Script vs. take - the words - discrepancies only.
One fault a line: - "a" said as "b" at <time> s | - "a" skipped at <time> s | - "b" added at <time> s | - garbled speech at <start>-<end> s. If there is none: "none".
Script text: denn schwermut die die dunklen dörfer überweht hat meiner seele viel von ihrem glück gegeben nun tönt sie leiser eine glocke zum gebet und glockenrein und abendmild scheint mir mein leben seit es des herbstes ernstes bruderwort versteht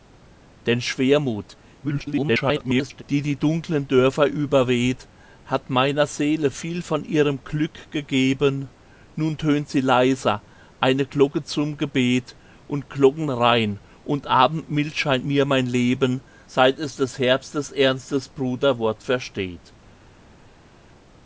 - garbled speech at 1.8-3.0 s